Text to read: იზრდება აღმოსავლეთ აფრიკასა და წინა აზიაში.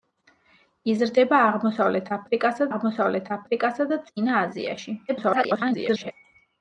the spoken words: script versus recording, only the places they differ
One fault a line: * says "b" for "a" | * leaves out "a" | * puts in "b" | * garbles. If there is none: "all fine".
* puts in "აღმოსავლეთ აფრიკასა"
* garbles